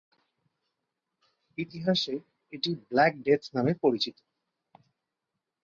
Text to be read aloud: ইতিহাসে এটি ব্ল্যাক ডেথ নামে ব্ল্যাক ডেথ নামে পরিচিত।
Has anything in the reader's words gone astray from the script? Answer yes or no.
yes